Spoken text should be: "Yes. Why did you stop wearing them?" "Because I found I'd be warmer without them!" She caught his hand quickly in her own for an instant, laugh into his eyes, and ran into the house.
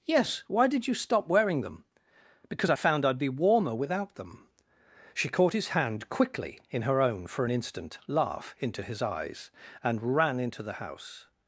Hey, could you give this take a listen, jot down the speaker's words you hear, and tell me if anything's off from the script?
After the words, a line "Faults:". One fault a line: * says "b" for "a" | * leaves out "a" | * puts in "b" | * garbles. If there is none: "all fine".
"Yes. Why did you stop wearing them?" "Because I found I'd be warmer without them!" She caught his hand quickly in her own for an instant, laugh into his eyes, and ran into the house.
Faults:
all fine